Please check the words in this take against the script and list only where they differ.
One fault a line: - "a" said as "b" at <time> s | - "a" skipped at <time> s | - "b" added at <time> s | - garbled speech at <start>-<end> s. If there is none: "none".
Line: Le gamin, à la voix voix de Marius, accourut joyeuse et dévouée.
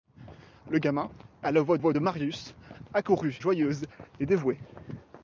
none